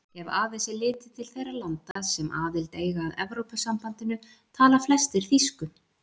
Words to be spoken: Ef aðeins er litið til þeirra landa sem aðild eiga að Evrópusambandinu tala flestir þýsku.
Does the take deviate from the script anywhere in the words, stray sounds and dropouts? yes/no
yes